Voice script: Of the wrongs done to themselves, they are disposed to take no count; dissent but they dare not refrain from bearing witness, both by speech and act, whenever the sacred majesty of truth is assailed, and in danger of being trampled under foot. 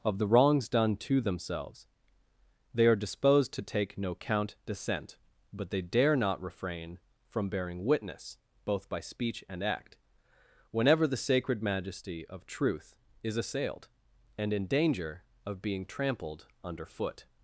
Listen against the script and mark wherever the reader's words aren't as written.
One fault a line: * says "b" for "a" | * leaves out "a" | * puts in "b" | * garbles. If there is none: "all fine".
all fine